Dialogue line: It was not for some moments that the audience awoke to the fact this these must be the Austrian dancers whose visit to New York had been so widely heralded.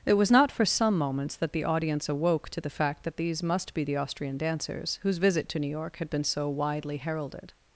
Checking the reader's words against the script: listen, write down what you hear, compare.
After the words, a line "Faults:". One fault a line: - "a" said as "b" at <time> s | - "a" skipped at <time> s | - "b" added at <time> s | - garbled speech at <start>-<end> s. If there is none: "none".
It was not for some moments that the audience awoke to the fact that these must be the Austrian dancers whose visit to New York had been so widely heralded.
Faults:
- "this" said as "that" at 3.0 s